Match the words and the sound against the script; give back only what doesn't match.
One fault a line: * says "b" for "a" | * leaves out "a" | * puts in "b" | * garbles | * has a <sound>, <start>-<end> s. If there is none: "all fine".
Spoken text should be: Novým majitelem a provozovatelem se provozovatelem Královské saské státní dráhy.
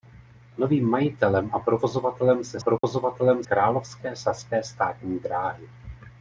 * has a dropout, 2.8-2.8 s